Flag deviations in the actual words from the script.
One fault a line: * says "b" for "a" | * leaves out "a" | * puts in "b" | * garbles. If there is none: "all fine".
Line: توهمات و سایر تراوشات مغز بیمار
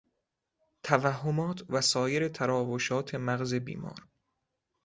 all fine